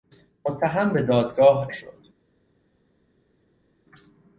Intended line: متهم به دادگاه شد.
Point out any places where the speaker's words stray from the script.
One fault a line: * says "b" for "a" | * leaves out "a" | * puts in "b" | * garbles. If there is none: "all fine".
all fine